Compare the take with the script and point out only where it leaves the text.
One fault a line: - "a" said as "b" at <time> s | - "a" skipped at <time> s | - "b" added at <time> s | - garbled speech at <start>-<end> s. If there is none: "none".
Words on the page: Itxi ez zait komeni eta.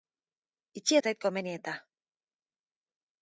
none